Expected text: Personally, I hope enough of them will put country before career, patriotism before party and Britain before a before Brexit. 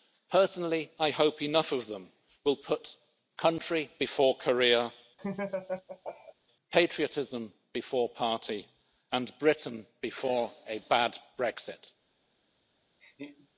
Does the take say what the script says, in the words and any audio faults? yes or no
no